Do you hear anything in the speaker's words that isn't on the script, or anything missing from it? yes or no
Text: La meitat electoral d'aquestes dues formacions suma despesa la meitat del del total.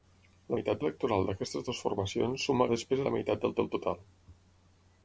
no